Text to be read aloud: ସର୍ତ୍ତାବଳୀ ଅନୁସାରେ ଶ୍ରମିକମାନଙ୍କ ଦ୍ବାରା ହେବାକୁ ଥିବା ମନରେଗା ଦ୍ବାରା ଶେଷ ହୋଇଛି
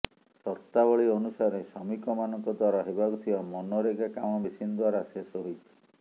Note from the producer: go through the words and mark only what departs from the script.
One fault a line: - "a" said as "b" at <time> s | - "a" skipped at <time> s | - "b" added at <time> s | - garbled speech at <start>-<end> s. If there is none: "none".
- "କାମ ମେସିନ" added at 4.1 s